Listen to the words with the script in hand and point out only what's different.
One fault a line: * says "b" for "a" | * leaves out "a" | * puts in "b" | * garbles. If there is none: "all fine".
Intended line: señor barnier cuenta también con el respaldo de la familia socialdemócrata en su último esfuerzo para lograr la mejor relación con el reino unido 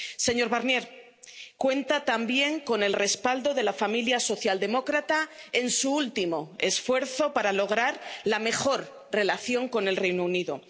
all fine